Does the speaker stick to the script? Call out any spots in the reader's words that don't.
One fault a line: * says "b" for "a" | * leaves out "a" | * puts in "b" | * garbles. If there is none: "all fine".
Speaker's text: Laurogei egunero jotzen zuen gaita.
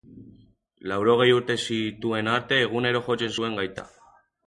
* puts in "urte zituen arte"